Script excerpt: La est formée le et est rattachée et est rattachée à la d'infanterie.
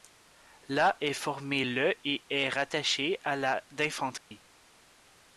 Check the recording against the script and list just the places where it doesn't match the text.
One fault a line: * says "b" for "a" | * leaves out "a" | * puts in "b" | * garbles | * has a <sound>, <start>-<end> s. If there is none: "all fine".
* leaves out "et est rattachée"
* has a dropout, 4.2-4.3 s